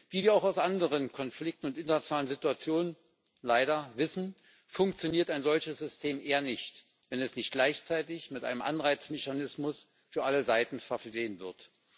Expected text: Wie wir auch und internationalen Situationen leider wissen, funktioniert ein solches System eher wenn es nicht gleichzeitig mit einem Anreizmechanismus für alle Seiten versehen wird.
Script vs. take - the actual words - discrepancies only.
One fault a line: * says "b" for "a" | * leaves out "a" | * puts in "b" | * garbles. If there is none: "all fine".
* puts in "aus anderen Konflikten"
* puts in "nicht"